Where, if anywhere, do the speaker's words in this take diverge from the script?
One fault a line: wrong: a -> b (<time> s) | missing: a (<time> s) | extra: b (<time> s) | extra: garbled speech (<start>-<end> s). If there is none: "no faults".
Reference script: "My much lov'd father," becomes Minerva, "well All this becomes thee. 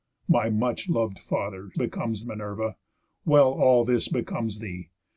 no faults